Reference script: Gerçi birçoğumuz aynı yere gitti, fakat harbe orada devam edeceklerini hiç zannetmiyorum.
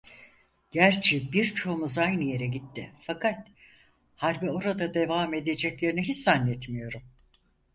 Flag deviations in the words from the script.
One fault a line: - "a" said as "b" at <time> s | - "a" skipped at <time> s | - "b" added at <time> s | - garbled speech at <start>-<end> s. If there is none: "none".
none